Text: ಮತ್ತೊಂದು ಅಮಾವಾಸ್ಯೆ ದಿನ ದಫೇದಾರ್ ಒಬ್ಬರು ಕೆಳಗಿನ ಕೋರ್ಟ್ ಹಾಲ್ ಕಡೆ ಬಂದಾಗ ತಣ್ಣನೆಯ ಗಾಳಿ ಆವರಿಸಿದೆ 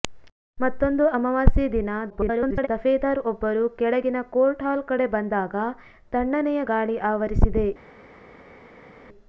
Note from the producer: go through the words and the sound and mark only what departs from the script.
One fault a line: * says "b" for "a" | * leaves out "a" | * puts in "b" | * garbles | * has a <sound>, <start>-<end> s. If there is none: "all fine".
* garbles